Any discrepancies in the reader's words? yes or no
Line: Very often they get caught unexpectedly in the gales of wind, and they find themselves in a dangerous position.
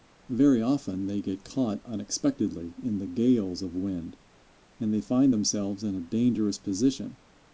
no